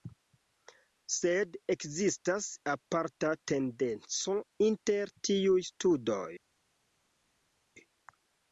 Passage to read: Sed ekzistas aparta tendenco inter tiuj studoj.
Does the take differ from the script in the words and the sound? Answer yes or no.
no